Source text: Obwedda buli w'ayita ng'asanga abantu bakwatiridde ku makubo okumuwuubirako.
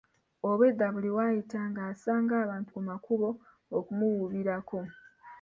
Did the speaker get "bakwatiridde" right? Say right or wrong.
wrong